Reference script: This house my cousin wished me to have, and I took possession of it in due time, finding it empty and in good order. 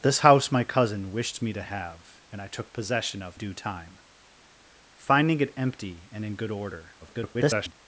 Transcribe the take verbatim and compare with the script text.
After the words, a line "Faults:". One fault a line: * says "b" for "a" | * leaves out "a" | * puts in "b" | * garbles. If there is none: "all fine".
This house my cousin wished me to have, and I took possession of due time, finding it empty and in good order. [garbled]
Faults:
* leaves out "it in"
* garbles